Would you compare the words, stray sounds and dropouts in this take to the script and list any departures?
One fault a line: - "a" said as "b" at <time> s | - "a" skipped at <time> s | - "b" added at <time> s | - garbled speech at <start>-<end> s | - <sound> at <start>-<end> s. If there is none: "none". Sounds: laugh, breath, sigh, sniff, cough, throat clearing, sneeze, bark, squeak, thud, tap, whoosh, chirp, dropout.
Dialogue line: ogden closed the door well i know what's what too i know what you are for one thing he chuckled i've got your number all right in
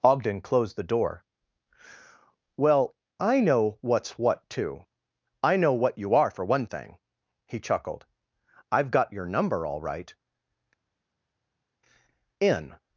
none